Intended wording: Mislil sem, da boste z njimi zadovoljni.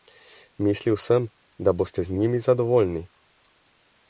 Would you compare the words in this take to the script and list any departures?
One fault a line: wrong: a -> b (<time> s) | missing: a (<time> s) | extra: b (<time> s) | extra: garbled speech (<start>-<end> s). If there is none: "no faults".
no faults